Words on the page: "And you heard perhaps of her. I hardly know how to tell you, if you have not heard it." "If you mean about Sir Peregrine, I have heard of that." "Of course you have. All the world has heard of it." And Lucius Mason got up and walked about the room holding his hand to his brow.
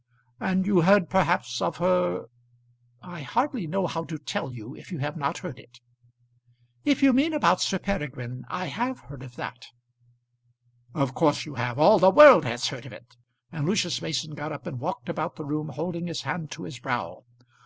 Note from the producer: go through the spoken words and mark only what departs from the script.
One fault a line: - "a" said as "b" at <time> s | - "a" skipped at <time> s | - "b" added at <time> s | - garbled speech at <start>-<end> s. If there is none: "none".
none